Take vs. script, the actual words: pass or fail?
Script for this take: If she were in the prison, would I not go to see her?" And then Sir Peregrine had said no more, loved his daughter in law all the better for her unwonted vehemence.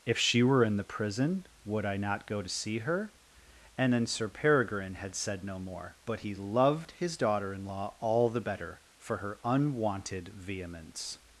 fail